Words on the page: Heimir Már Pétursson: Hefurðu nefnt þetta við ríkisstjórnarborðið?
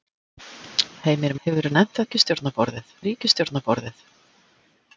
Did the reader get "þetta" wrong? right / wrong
wrong